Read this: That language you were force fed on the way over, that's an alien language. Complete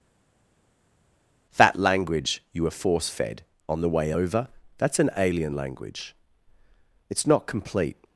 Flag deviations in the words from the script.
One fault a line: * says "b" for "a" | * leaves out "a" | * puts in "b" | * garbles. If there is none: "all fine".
* puts in "It's not"